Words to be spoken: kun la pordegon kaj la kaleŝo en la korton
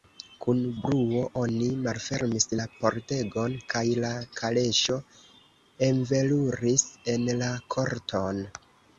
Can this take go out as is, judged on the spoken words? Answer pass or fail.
fail